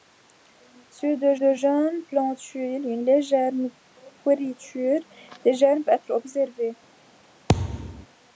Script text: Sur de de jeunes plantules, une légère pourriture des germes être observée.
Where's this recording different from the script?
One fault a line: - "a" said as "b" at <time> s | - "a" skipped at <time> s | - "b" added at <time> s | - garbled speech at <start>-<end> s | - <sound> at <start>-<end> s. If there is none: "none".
- thud at 7.5-8.1 s